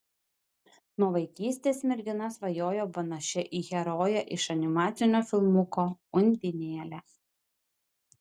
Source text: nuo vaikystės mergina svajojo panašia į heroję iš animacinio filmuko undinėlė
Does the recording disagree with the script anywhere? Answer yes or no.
no